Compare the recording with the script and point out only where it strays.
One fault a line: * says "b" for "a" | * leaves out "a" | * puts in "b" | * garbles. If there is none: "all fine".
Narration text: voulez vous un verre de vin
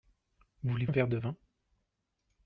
* leaves out "vous"